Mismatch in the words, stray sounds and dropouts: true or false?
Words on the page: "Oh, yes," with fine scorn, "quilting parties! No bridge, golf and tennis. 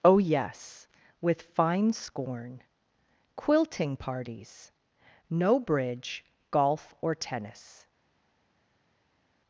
true